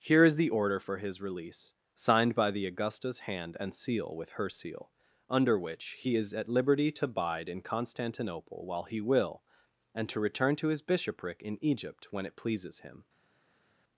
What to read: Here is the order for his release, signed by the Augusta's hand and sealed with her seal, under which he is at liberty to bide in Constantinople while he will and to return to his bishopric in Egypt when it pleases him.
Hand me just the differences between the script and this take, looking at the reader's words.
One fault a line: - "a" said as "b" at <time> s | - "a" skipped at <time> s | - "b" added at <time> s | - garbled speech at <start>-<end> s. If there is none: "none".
- "sealed" said as "seal" at 3.7 s